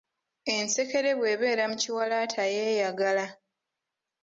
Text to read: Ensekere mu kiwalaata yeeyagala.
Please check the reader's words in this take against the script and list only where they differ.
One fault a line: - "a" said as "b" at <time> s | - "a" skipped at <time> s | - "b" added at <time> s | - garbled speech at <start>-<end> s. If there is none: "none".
- "bw'ebeera" added at 1.2 s